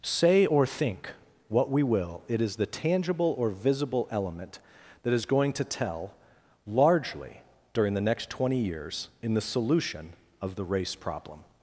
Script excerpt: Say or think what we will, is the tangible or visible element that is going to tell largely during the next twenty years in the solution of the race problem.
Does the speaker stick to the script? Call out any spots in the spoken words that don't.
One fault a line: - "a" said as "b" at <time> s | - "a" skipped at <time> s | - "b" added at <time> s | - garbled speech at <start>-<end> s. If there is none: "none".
- "it" added at 2.3 s